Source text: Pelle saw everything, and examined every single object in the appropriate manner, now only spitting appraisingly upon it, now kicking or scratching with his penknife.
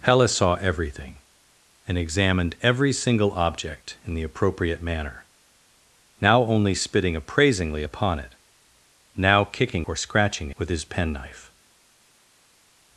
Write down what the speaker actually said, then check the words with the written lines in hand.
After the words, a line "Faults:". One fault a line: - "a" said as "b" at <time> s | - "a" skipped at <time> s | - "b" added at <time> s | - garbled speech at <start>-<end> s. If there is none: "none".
Pelle saw everything, and examined every single object in the appropriate manner, now only spitting appraisingly upon it, now kicking or scratching with his penknife.
Faults:
none